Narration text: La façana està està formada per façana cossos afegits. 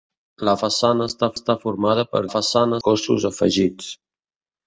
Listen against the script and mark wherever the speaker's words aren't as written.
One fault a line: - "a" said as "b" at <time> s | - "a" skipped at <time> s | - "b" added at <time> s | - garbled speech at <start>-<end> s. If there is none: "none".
none